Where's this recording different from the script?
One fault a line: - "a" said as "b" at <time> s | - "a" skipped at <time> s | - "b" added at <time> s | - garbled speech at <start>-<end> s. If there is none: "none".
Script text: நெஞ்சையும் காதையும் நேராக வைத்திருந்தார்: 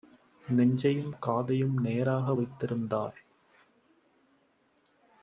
none